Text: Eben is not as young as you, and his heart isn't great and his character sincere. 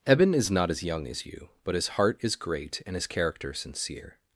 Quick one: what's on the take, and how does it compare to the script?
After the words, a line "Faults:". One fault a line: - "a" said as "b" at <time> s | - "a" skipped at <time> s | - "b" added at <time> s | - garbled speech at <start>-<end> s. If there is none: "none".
Eben is not as young as you, but his heart is great and his character sincere.
Faults:
- "and" said as "but" at 1.6 s
- "isn't" said as "is" at 2.2 s